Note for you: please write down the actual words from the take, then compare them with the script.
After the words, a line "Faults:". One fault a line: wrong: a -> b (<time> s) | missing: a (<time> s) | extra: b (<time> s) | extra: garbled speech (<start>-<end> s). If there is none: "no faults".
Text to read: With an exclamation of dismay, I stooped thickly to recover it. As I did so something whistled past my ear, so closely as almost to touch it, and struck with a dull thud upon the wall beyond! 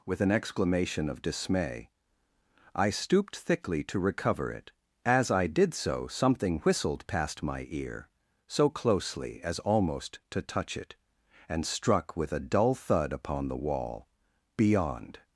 With an exclamation of dismay, I stooped thickly to recover it. As I did so something whistled past my ear, so closely as almost to touch it, and struck with a dull thud upon the wall beyond!
Faults:
no faults